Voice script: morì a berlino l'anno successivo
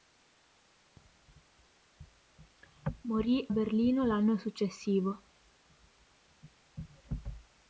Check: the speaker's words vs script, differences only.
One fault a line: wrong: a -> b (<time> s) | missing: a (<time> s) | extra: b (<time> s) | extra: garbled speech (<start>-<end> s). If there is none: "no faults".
missing: a (3.5 s)